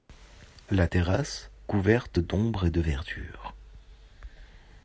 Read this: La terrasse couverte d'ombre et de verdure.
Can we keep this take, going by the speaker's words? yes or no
yes